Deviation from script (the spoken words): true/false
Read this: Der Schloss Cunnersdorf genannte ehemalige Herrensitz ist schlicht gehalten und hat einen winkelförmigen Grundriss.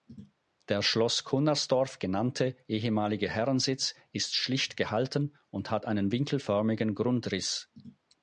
false